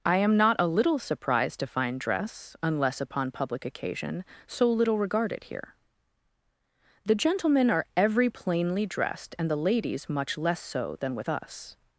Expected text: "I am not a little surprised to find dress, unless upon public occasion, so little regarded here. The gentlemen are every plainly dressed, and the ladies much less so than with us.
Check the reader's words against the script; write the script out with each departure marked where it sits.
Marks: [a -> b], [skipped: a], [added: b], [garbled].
"I am not a little surprised to find dress, unless upon public occasion, so little regarded here. The gentlemen are every plainly dressed, and the ladies much less so than with us.